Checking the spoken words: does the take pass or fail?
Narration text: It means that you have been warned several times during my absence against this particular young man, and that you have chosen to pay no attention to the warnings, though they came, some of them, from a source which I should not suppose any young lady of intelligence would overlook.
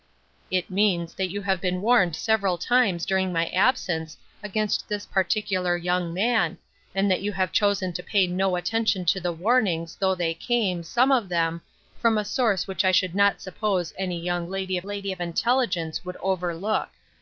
fail